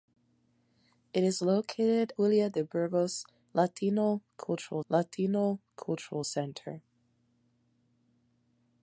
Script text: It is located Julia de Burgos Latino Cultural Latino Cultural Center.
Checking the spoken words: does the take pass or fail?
pass